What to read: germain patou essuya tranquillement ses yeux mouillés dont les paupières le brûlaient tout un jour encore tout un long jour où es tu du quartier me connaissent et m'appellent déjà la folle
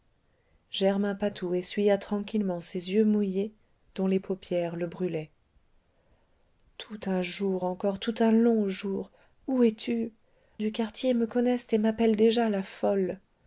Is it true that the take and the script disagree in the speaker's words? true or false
false